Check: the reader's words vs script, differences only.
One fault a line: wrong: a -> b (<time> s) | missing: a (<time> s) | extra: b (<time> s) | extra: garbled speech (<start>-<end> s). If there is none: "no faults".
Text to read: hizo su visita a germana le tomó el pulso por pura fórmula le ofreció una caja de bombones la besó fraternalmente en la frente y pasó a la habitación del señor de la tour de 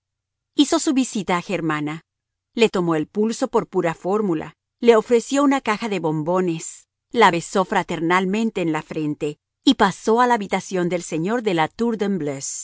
no faults